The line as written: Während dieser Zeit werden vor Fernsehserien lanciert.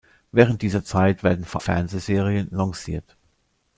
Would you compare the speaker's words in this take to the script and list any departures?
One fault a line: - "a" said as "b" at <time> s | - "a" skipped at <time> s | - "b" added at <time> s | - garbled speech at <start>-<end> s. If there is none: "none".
none